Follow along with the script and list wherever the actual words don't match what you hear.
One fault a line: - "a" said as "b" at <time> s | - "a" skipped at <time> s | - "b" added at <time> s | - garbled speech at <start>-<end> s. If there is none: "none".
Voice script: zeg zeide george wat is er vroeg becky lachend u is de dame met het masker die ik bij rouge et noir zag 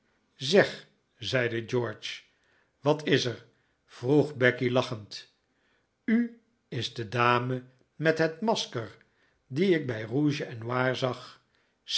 none